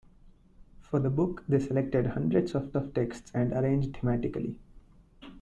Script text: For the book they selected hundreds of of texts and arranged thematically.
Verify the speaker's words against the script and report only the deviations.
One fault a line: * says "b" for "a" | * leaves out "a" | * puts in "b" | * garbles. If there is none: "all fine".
all fine